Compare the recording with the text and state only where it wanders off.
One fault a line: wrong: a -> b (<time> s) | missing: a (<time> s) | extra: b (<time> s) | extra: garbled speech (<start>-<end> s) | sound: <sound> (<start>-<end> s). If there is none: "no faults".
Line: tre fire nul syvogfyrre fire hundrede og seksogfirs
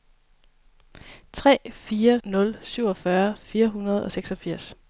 no faults